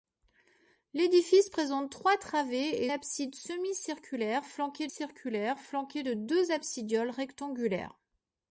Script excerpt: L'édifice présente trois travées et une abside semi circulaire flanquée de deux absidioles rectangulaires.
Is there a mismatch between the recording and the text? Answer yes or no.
yes